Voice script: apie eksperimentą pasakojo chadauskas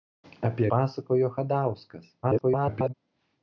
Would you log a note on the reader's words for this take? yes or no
yes